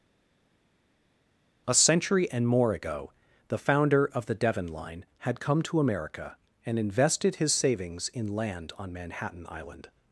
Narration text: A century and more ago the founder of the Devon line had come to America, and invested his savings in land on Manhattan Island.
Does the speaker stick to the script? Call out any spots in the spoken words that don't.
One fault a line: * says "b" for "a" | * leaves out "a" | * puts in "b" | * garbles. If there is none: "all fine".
all fine